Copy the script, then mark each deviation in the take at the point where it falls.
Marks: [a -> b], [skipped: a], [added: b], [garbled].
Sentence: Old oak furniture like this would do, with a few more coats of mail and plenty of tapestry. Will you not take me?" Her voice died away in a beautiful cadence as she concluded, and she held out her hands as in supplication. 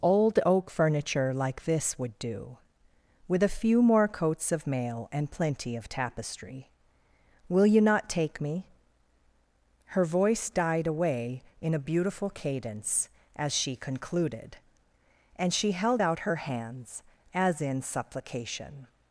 Old oak furniture like this would do, with a few more coats of mail and plenty of tapestry. Will you not take me?" Her voice died away in a beautiful cadence as she concluded, and she held out her hands as in supplication.